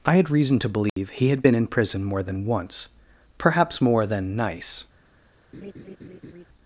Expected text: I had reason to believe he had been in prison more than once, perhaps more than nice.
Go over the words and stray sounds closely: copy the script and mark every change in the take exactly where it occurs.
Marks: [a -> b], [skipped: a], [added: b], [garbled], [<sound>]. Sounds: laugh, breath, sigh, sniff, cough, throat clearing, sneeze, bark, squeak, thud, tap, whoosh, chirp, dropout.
I had reason to believe [dropout] he had been in prison more than once, perhaps more than nice. [laugh]